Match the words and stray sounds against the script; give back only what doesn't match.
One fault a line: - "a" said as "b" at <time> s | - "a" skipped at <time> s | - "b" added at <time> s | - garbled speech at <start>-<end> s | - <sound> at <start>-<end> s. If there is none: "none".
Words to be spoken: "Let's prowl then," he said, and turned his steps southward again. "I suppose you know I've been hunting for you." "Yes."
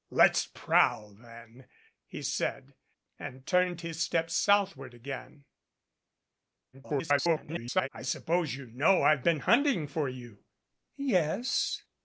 - garbled speech at 6.7-7.9 s